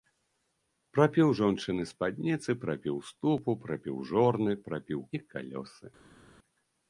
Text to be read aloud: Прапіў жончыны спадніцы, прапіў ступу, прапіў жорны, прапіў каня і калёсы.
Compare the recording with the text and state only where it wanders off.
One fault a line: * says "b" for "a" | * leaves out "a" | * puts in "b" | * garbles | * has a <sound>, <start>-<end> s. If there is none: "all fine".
* leaves out "каня"